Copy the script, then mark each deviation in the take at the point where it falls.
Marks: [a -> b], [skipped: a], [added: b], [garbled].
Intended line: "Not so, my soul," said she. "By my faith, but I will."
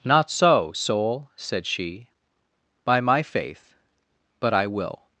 "Not so, [skipped: my] soul," said she. "By my faith, but I will."